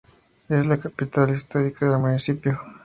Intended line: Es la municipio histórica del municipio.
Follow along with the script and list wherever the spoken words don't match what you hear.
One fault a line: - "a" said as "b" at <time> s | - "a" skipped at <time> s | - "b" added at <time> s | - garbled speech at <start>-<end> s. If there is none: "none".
- "municipio" said as "capital" at 0.8 s